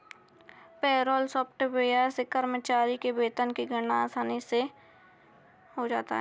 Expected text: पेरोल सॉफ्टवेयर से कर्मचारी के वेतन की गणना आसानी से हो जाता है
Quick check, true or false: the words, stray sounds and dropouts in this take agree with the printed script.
true